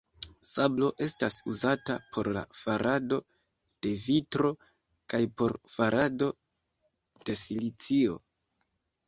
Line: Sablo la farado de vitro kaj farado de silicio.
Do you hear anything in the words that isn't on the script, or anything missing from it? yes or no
yes